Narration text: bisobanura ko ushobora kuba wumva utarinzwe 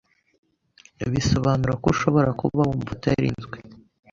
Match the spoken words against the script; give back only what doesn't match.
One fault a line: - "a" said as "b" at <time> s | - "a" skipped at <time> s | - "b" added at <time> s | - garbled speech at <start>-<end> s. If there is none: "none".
none